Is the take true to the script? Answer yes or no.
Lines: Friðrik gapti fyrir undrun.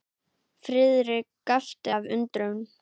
no